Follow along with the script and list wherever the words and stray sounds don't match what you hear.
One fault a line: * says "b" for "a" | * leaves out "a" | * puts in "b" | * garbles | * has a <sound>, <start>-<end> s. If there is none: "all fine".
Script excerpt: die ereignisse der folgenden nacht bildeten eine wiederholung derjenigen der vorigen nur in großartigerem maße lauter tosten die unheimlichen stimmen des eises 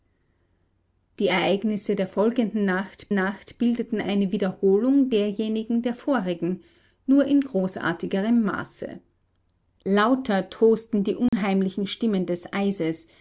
* puts in "nacht"
* has a dropout, 11.3-11.3 s